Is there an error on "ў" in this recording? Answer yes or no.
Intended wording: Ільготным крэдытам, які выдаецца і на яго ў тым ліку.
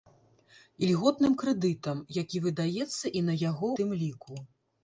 yes